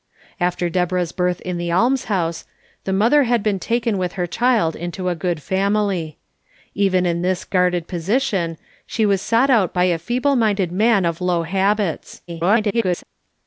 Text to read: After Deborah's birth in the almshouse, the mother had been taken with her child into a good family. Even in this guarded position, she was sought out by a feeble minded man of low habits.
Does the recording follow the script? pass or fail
fail